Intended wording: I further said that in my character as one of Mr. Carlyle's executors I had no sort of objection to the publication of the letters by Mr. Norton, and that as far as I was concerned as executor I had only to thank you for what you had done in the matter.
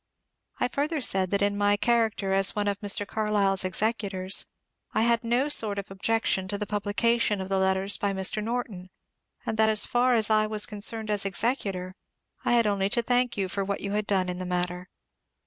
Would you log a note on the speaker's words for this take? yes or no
no